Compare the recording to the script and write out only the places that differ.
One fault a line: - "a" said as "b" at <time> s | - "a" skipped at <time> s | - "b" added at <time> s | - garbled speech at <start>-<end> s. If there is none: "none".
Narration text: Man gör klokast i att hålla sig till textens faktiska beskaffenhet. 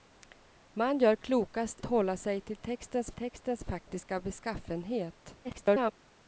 - "i att" skipped at 1.8 s
- "textens" added at 3.1 s
- garbled speech at 5.4-5.9 s